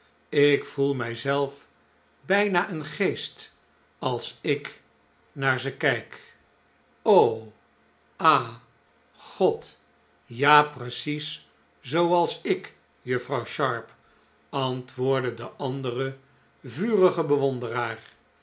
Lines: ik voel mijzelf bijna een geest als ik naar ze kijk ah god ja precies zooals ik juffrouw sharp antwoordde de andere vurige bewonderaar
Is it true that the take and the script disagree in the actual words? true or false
false